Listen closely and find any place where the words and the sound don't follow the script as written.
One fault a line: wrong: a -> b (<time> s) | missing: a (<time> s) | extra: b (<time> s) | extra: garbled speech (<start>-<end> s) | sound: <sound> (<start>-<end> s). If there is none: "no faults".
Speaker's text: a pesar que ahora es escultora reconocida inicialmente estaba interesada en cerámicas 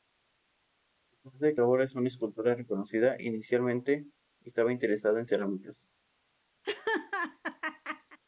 extra: de (1.4 s)
extra: una (1.9 s)
sound: laugh (6.6-8.2 s)